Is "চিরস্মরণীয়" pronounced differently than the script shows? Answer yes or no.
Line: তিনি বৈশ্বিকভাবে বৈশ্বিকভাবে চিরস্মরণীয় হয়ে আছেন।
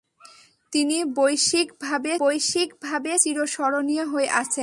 no